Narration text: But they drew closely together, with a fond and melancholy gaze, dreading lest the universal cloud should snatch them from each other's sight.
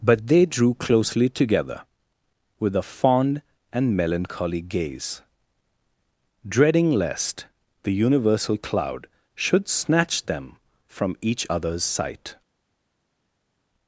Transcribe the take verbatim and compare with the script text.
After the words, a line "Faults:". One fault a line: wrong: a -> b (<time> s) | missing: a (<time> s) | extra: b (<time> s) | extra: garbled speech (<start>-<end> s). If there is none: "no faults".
But they drew closely together, with a fond and melancholy gaze, dreading lest the universal cloud should snatch them from each other's sight.
Faults:
no faults